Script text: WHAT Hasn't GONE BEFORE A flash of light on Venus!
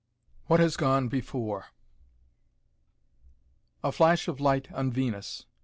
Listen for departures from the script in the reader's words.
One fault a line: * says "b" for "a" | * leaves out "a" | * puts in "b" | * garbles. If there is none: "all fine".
* says "HAS" for "Hasn't"